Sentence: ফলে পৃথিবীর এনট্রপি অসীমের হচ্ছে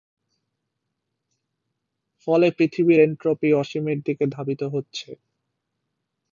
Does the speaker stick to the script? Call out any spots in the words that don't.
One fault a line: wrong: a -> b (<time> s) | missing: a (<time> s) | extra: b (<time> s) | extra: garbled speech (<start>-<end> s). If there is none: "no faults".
extra: দিকে ধাবিত (4.1 s)